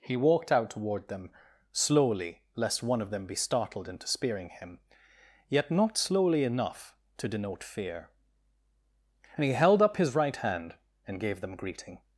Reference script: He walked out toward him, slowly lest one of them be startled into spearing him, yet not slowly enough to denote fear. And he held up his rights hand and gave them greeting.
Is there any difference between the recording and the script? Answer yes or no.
yes